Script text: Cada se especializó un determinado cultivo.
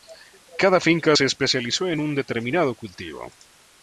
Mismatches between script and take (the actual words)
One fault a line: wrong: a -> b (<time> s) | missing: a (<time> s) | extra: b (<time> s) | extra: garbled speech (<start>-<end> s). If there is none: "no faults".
extra: finca (0.8 s)
extra: en (1.9 s)